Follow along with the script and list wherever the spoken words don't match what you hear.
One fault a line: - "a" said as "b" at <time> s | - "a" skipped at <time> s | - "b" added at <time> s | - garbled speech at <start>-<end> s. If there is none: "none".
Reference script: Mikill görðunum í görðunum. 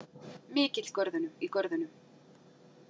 none